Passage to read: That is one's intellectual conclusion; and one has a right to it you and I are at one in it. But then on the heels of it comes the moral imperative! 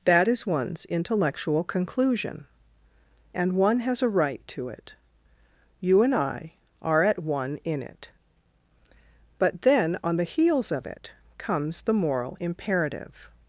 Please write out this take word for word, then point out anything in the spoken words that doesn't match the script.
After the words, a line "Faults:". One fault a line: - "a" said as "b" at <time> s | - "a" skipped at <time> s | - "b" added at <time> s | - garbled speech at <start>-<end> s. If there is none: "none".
That is one's intellectual conclusion; and one has a right to it you and I are at one in it. But then on the heels of it comes the moral imperative!
Faults:
none